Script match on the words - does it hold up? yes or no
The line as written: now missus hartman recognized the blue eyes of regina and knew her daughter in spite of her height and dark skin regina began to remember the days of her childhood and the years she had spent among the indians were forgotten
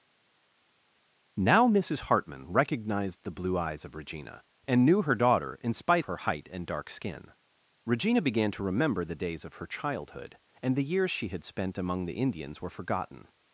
no